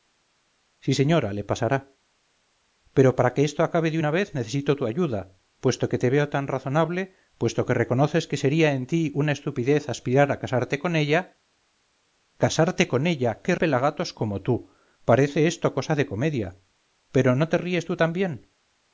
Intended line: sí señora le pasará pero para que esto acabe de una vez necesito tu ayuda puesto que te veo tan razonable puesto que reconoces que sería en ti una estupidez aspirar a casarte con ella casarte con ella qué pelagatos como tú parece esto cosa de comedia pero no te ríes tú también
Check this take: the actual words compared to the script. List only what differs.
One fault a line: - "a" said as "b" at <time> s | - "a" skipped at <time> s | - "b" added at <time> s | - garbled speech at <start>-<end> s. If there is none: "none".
none